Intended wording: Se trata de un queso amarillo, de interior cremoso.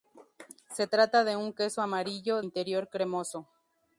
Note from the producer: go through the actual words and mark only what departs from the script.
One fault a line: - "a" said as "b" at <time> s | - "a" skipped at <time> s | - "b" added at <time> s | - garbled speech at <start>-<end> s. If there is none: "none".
- "de" skipped at 2.4 s